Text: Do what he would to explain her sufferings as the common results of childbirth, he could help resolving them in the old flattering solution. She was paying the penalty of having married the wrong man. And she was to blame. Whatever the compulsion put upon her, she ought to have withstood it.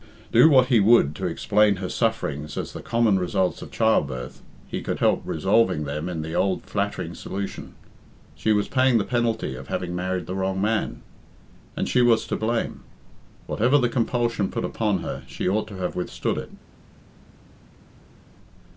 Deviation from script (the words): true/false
false